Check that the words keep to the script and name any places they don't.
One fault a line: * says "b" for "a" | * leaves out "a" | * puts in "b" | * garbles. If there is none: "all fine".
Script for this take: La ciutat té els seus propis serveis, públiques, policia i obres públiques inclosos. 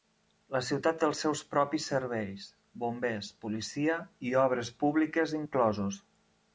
* says "bombers" for "públiques"